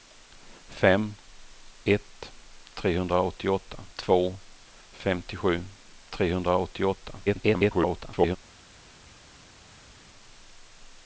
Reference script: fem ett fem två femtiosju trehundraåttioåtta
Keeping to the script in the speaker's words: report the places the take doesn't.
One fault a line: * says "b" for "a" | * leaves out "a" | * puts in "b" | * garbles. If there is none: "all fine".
* says "trehundraåttioåtta" for "fem"
* garbles